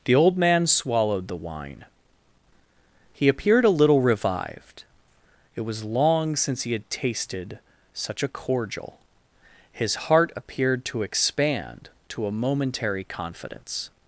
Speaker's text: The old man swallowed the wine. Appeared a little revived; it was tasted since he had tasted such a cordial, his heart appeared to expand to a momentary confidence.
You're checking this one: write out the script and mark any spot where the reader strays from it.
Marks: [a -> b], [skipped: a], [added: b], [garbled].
The old man swallowed the wine. [added: He] Appeared a little revived; it was [tasted -> long] since he had tasted such a cordial, his heart appeared to expand to a momentary confidence.